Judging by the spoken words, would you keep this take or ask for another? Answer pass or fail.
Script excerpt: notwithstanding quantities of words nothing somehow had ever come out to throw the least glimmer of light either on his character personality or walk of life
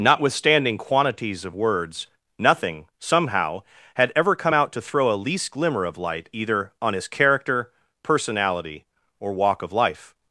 fail